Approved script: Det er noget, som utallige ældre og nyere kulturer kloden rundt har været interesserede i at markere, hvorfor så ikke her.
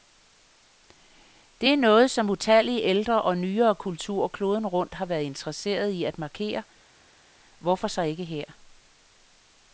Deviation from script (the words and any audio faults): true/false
false